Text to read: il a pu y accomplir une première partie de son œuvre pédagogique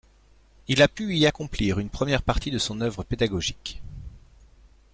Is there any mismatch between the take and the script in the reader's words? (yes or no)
no